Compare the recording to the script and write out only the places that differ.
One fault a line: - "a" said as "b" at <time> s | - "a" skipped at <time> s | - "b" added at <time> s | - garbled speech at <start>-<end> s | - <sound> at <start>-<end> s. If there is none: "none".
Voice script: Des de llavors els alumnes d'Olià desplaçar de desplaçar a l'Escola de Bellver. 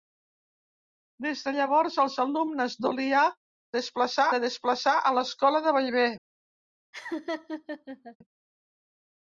- laugh at 6.9-8.2 s